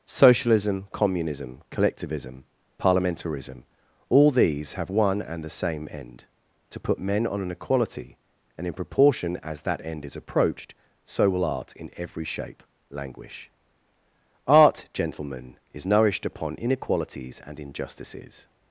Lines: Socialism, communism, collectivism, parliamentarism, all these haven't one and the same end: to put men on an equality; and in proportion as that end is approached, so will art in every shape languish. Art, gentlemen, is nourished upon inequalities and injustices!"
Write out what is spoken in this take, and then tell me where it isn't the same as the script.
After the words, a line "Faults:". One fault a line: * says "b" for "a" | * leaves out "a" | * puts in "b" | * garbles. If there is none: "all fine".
Socialism, communism, collectivism, parliamentarism, all these have one and the same end: to put men on an equality; and in proportion as that end is approached, so will art in every shape languish. Art, gentlemen, is nourished upon inequalities and injustices!"
Faults:
* says "have" for "haven't"